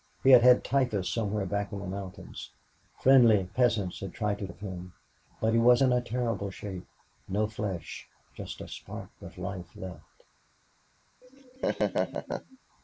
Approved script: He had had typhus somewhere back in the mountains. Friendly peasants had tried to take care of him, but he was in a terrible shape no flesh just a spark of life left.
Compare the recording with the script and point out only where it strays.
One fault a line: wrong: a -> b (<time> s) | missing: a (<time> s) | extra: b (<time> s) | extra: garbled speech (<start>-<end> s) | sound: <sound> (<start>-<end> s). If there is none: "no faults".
missing: take care (4.5 s)
sound: laugh (11.2-12.6 s)